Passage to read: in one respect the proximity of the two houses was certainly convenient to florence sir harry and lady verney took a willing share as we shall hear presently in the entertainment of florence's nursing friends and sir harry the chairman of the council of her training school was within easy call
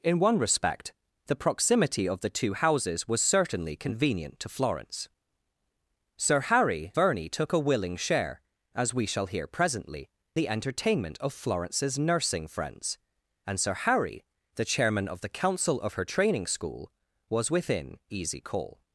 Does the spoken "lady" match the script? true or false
false